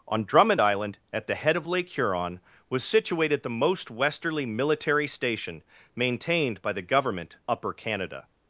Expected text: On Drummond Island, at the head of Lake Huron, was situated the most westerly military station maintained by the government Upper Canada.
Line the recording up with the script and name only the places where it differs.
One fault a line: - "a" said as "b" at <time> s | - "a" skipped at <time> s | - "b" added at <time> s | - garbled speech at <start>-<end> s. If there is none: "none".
none